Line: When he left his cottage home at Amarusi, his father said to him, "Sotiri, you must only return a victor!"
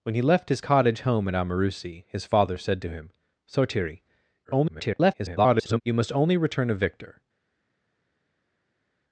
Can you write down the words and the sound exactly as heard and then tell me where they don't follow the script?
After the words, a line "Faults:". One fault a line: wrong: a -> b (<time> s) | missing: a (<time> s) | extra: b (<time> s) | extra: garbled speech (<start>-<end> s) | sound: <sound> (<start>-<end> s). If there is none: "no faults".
When he left his cottage home at Amarusi, his father said to him, "Sotiri, [garbled] you must only return a victor!"
Faults:
extra: garbled speech (4.4-5.8 s)